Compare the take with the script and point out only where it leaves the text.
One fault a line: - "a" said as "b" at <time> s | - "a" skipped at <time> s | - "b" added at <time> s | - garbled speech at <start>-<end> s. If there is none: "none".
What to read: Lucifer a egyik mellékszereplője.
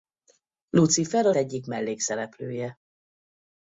none